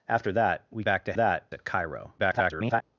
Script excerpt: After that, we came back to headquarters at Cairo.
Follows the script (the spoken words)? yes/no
no